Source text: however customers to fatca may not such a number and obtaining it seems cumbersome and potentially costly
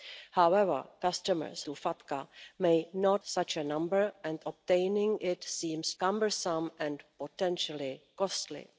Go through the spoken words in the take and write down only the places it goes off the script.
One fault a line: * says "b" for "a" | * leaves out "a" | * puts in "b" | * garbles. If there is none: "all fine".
all fine